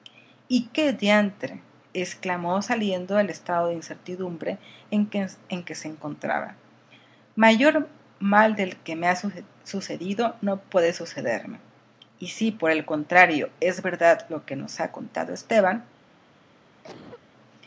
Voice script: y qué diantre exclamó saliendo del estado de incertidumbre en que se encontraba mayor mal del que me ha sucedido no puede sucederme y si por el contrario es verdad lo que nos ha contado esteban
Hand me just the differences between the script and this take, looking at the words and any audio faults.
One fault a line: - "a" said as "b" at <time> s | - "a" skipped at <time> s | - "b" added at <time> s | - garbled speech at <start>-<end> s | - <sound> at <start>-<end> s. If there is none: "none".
- cough at 16.8-17.3 s